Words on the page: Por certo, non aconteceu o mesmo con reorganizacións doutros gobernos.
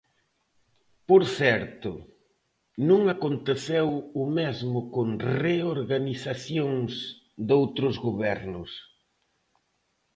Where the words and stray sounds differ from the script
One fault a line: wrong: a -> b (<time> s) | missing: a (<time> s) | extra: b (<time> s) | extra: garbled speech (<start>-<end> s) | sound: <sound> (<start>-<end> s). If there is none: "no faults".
no faults